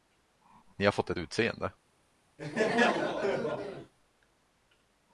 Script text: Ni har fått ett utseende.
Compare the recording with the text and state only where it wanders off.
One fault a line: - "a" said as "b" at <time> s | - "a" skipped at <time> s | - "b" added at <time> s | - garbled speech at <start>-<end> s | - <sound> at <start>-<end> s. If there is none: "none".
- laugh at 2.4-3.9 s